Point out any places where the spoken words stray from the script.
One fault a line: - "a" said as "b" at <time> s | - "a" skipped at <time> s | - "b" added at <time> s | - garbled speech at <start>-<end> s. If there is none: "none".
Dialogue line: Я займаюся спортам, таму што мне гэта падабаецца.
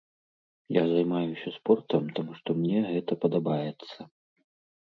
none